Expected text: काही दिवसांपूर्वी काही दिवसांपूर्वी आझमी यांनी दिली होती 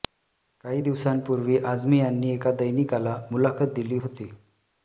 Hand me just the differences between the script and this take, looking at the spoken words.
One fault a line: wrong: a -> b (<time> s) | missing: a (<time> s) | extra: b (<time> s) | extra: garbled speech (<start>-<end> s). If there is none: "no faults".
wrong: काही दिवसांपूर्वी आझमी यांनी -> आझमी यांनी एका दैनिकाला मुलाखत (1.6 s)